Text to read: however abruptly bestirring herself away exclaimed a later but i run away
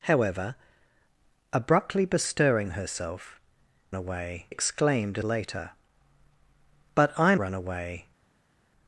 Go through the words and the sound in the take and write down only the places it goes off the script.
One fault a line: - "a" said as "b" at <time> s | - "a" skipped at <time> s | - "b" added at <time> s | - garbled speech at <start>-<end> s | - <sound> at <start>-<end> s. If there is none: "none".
none